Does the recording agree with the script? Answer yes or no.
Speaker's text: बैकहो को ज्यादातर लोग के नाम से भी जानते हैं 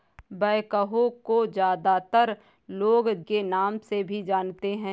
yes